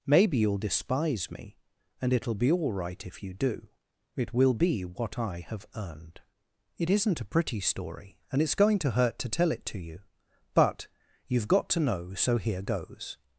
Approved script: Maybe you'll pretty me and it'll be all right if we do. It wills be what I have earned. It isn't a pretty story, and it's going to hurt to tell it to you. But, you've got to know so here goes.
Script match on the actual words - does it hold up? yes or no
no